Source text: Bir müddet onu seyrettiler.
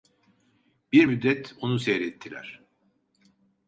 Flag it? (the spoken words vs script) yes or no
no